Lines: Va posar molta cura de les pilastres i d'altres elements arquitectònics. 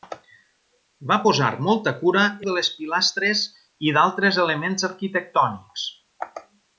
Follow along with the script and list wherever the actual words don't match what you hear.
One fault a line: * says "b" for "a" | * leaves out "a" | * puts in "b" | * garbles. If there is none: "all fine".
all fine